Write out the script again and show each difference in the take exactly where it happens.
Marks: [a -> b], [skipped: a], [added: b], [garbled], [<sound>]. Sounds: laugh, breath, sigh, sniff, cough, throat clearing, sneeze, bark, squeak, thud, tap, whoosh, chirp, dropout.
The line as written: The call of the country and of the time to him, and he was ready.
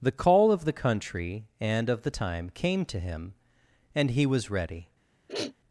The call of the country and of the time [added: came] to him, and he was ready. [sniff]